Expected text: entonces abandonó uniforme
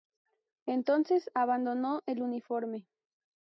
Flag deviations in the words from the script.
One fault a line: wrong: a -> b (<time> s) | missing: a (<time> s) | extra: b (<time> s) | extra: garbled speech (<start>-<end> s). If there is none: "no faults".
extra: el (2.1 s)